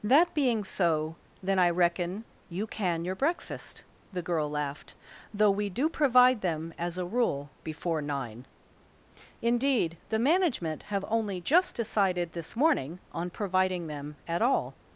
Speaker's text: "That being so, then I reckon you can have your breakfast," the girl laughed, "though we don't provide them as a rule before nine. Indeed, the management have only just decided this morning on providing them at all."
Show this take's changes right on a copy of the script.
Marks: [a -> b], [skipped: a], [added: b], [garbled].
"That being so, then I reckon you can [skipped: have] your breakfast," the girl laughed, "though we [don't -> do] provide them as a rule before nine. Indeed, the management have only just decided this morning on providing them at all."